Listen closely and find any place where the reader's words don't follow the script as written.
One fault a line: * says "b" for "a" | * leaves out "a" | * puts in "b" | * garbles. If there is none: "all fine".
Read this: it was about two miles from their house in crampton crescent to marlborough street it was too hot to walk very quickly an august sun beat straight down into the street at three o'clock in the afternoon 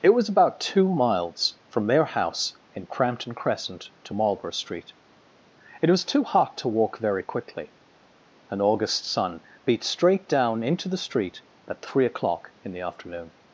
all fine